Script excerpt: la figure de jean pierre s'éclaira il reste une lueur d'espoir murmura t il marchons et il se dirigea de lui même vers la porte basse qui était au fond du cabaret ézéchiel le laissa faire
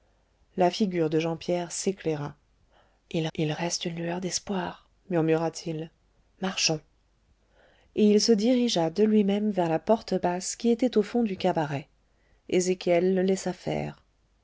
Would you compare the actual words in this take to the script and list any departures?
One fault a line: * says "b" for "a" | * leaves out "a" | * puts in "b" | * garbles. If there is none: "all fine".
* puts in "il"